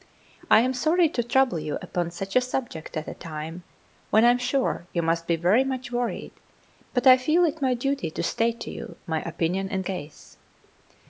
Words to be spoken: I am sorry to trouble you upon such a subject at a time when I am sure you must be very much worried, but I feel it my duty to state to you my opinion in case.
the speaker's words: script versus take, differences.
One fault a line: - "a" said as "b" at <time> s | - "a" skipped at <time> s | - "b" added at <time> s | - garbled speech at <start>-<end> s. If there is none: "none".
none